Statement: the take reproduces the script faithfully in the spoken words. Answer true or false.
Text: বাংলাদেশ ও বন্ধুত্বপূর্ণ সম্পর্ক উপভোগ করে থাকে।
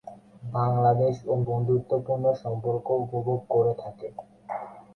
true